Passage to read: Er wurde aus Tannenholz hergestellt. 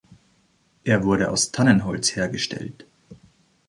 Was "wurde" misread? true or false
false